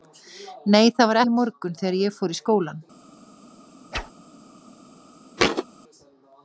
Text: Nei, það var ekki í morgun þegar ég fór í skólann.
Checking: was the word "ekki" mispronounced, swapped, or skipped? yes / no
yes